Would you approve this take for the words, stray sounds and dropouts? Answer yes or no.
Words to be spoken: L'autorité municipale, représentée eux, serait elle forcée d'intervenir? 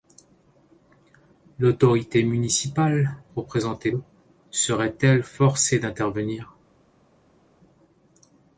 yes